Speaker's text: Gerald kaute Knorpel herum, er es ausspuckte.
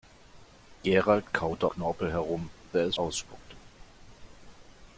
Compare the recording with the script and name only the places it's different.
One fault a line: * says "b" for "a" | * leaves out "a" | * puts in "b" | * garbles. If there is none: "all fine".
all fine